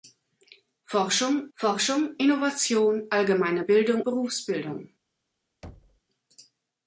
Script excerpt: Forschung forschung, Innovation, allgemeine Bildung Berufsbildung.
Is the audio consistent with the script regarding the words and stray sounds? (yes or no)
no